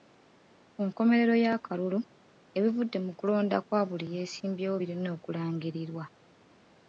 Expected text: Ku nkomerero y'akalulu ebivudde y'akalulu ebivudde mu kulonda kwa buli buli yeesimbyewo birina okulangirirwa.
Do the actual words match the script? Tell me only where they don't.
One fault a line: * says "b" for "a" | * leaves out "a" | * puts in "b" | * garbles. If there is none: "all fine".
* leaves out "y'akalulu ebivudde"
* leaves out "buli"